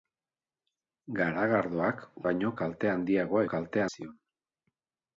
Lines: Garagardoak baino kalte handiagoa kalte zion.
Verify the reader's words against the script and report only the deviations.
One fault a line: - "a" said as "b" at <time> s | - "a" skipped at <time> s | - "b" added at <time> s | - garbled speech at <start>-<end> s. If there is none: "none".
none